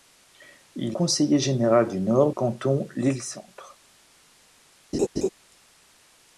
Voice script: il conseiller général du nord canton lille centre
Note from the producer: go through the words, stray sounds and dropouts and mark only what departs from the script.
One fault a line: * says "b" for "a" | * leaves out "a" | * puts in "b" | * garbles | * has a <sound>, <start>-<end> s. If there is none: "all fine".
* has a laugh, 4.9-5.3 s